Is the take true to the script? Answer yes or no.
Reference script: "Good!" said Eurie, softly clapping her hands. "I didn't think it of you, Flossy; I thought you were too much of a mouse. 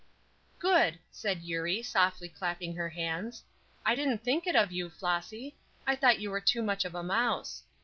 yes